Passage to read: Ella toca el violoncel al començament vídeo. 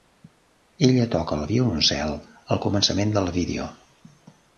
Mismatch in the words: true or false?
true